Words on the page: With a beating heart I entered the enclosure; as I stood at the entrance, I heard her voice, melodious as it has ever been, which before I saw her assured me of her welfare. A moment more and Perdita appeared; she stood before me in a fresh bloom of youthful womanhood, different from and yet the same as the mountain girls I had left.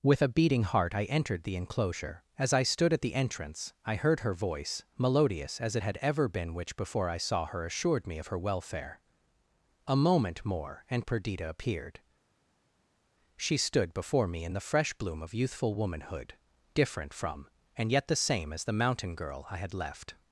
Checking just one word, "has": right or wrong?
wrong